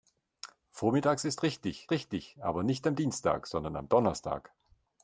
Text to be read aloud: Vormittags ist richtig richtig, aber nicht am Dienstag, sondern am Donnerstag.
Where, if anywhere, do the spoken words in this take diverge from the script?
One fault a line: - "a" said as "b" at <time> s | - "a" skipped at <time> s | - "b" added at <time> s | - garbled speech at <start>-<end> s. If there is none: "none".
none